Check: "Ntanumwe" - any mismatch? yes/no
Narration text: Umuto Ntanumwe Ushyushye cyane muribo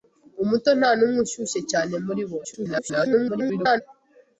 no